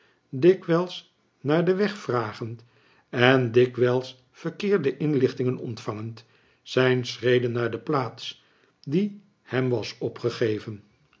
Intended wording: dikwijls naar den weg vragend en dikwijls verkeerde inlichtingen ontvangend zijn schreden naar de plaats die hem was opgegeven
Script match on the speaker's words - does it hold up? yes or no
yes